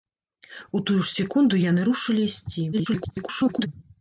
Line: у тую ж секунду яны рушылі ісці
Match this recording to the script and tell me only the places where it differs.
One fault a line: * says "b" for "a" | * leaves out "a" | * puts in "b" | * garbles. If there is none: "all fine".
* garbles